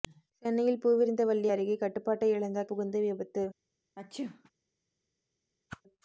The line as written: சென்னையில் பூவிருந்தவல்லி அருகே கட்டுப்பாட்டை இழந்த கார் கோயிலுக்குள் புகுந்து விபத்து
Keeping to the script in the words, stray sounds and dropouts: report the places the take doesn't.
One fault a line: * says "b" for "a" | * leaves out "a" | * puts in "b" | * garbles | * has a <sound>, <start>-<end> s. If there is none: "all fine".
* leaves out "கார் கோயிலுக்குள்"
* has a sneeze, 4.0-4.5 s
* has a whoosh, 5.7-5.8 s